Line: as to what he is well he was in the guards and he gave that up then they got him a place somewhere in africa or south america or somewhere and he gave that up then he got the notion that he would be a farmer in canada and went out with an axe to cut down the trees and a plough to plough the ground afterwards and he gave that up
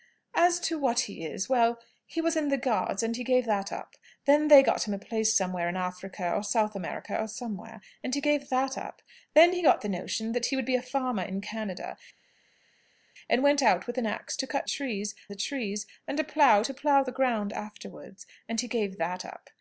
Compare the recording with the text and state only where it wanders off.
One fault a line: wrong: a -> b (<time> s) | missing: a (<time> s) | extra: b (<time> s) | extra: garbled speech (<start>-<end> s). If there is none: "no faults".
wrong: down -> trees (14.6 s)